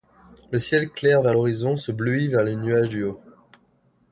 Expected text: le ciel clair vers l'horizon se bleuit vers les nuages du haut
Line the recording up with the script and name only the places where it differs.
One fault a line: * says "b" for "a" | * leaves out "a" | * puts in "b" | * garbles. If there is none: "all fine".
all fine